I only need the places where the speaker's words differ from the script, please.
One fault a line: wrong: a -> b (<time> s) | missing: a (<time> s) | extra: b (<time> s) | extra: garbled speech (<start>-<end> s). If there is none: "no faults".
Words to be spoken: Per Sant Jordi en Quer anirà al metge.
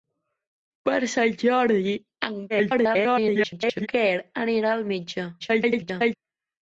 extra: garbled speech (2.5-3.9 s)
extra: garbled speech (5.4-6.2 s)